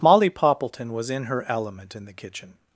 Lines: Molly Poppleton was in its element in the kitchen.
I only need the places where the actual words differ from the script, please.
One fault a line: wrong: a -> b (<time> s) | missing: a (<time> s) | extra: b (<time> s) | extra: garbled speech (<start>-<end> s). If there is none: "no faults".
wrong: its -> her (1.2 s)